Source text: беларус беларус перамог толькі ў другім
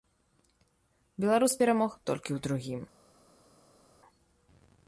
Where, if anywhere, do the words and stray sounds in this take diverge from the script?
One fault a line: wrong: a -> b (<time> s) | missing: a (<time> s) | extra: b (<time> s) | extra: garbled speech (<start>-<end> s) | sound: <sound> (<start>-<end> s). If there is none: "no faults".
missing: беларус (1.5 s)